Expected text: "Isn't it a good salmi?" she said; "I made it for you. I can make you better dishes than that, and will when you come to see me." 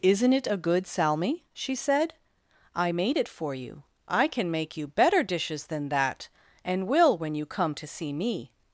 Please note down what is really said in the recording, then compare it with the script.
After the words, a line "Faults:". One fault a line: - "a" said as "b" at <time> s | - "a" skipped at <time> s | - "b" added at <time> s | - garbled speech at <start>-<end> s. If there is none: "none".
"Isn't it a good salmi?" she said; "I made it for you. I can make you better dishes than that, and will when you come to see me."
Faults:
none